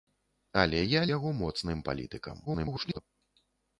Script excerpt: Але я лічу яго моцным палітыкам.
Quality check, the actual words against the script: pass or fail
fail